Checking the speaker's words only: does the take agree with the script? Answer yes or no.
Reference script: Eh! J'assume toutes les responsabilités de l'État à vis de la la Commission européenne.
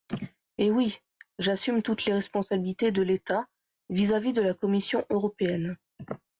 no